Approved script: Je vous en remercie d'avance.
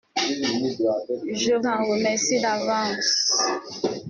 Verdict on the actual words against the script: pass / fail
fail